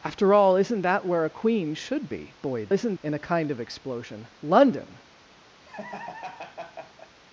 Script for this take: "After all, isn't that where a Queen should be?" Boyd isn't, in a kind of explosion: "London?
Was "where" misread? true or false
false